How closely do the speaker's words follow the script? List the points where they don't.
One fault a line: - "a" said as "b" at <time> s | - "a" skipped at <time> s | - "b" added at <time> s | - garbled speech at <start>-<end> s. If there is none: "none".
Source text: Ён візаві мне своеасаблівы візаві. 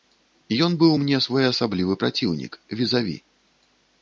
- "візаві" said as "быў" at 0.8 s
- "праціўнік" added at 2.0 s